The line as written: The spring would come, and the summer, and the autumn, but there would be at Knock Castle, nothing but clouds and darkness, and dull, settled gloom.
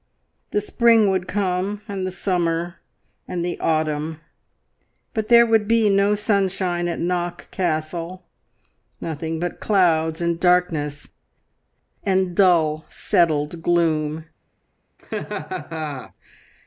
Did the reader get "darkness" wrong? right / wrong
right